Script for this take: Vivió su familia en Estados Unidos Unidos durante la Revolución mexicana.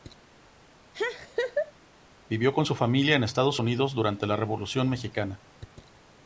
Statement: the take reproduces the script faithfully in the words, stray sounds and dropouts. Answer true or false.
false